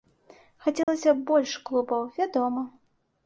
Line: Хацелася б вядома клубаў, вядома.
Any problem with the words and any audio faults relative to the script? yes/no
yes